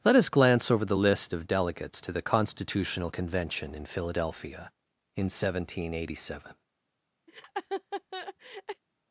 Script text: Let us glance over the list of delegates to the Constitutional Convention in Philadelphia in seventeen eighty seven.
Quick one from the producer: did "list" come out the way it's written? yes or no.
yes